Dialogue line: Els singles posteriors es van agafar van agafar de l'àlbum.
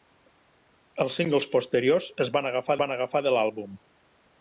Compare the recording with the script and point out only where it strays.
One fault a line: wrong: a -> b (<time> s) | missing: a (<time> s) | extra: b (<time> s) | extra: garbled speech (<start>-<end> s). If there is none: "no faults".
no faults